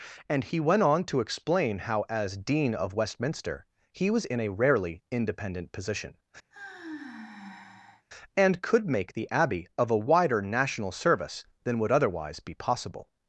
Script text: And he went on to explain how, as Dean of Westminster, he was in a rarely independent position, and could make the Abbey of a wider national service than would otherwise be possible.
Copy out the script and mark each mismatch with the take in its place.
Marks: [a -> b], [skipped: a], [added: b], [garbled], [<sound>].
And he went on to explain how, as Dean of Westminster, he was in a rarely independent position, [sigh] and could make the Abbey of a wider national service than would otherwise be possible.